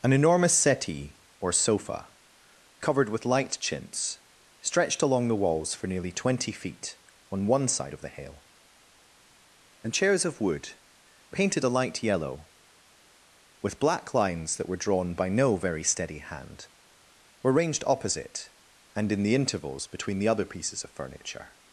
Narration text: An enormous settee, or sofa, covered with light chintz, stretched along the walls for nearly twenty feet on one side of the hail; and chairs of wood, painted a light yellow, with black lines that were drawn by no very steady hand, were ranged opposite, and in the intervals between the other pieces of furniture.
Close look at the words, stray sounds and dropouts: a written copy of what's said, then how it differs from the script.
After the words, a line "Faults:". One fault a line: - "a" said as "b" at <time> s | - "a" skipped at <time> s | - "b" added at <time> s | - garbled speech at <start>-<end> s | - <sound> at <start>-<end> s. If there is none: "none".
An enormous settee, or sofa, covered with light chintz, stretched along the walls for nearly twenty feet on one side of the hail; and chairs of wood, painted a light yellow, with black lines that were drawn by no very steady hand, were ranged opposite, and in the intervals between the other pieces of furniture.
Faults:
none